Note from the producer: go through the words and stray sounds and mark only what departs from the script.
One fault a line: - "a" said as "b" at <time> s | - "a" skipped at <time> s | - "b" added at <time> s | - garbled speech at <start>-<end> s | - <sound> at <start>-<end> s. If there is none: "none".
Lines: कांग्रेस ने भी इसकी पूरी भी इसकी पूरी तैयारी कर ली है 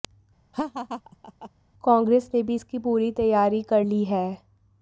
- laugh at 0.5-1.5 s
- "भी इसकी पूरी" skipped at 3.1 s